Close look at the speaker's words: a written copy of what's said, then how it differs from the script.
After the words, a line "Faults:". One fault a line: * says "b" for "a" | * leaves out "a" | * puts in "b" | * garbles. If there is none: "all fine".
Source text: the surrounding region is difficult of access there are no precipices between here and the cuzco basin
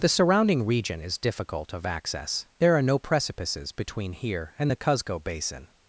the surrounding region is difficult of access there are no precipices between here and the cuzco basin
Faults:
all fine